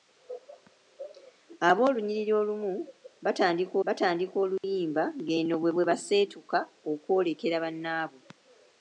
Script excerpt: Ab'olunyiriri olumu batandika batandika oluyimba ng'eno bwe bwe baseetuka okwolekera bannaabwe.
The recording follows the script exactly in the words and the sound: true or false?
false